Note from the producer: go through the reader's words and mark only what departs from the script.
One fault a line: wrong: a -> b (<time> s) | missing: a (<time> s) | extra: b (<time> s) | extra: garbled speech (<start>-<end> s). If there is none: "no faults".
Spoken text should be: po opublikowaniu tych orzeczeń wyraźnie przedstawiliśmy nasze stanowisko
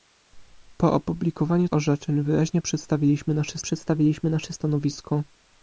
missing: tych (1.7 s)
extra: przedstawiliśmy nasze (3.6 s)